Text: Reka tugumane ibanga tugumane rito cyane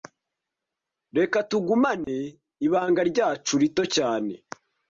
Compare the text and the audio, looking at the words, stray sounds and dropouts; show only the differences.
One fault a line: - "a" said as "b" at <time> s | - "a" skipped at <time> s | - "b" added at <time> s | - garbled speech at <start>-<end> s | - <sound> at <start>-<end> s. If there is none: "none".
- dropout at 2.0-2.1 s
- "tugumane" said as "ryacu" at 3.1 s